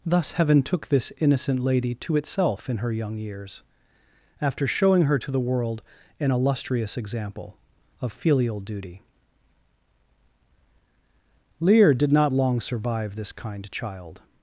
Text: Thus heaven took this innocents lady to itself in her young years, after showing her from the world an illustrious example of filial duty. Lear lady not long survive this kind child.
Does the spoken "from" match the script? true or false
false